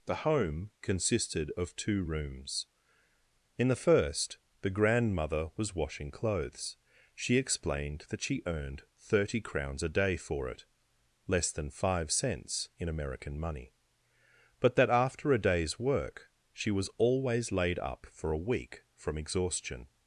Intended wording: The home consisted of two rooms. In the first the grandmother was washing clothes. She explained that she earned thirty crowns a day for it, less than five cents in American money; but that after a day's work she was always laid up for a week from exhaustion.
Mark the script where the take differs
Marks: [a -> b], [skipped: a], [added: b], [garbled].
The home consisted of two rooms. In the first the grandmother was washing clothes. She explained that she earned thirty crowns a day for it, less than five cents in American money; but that after a day's work she was always laid up for a week from exhaustion.